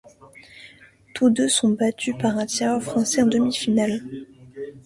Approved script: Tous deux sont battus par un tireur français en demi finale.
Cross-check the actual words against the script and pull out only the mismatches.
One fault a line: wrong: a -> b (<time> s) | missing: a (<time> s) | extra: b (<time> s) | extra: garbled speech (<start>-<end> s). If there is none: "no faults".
no faults